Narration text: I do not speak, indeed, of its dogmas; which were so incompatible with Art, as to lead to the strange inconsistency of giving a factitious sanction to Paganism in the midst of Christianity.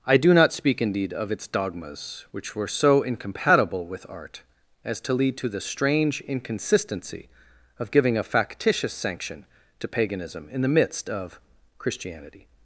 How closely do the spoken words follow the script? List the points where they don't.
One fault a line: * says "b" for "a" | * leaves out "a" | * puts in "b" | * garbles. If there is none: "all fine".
all fine